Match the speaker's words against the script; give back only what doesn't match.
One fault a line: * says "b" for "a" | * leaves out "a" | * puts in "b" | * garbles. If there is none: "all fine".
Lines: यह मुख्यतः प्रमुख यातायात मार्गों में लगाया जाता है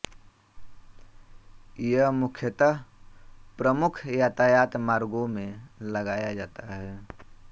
all fine